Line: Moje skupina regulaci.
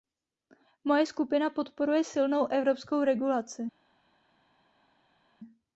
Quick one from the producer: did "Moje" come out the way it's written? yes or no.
yes